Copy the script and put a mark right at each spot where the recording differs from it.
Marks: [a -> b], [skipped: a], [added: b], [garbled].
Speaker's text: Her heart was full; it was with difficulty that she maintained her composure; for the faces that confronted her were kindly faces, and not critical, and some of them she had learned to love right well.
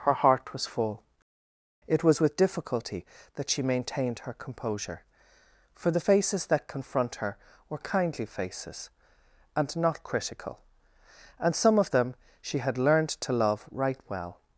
Her heart was full; it was with difficulty that she maintained her composure; for the faces that [confronted -> confront] her were kindly faces, and not critical, and some of them she had learned to love right well.